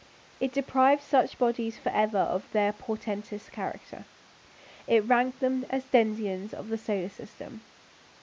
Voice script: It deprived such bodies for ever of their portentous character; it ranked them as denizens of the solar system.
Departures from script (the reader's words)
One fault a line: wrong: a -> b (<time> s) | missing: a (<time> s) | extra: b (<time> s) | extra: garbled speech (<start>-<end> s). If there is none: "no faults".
no faults